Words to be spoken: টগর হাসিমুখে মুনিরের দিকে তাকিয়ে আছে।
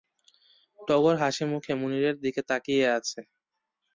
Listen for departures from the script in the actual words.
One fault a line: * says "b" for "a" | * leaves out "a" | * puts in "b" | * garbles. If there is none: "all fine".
all fine